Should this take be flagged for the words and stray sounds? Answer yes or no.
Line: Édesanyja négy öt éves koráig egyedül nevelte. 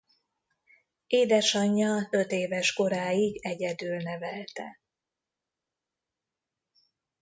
yes